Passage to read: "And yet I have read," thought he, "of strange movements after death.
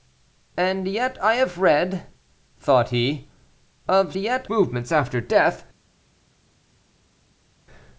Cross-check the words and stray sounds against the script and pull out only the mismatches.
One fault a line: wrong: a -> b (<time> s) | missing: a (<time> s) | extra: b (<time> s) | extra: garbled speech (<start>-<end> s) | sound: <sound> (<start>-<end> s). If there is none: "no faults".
wrong: strange -> yet (4.2 s)